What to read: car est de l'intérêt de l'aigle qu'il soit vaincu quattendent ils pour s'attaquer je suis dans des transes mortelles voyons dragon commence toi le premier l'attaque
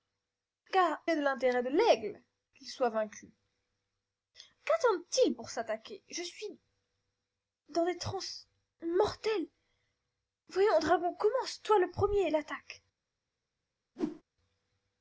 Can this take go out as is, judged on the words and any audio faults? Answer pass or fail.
fail